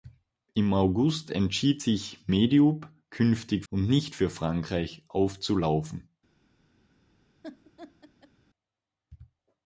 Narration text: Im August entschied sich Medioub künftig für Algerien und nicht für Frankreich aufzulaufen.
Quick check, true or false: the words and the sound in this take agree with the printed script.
false